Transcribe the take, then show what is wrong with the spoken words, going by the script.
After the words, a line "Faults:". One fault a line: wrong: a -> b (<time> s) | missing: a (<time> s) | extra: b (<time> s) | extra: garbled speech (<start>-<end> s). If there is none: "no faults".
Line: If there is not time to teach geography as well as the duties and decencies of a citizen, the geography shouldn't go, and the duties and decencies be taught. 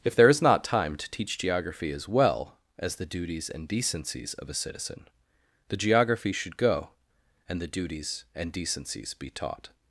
If there is not time to teach geography as well as the duties and decencies of a citizen, the geography should go, and the duties and decencies be taught.
Faults:
wrong: shouldn't -> should (6.3 s)